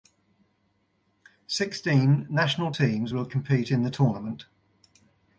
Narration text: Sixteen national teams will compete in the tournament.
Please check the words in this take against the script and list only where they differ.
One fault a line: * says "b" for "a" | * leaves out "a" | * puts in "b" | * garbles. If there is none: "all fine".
all fine